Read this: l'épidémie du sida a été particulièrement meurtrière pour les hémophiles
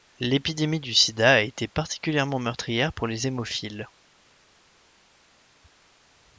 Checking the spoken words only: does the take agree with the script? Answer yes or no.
yes